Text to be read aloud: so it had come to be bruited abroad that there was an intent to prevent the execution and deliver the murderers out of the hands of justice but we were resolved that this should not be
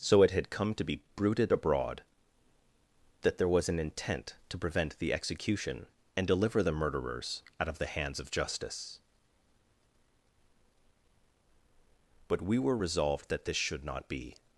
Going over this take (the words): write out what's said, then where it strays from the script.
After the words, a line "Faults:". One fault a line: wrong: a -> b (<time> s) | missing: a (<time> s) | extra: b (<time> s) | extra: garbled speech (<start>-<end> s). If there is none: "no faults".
so it had come to be bruited abroad that there was an intent to prevent the execution and deliver the murderers out of the hands of justice but we were resolved that this should not be
Faults:
no faults